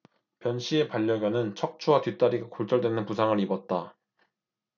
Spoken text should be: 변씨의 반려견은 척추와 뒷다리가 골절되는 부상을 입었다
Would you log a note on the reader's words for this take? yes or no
no